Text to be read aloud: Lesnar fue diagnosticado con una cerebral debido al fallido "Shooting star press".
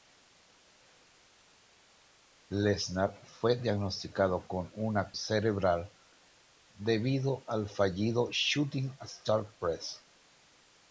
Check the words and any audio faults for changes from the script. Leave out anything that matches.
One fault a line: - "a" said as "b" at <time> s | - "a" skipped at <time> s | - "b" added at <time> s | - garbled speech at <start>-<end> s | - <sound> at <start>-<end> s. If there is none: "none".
none